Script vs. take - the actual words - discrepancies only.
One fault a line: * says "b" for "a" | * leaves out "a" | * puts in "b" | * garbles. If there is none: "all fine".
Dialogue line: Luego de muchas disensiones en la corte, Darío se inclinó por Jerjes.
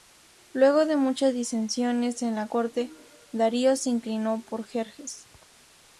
all fine